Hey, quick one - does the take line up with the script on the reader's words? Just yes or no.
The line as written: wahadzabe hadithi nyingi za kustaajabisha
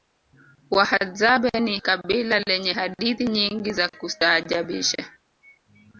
no